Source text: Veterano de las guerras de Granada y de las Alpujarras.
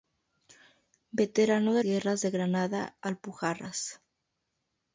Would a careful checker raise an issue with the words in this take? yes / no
yes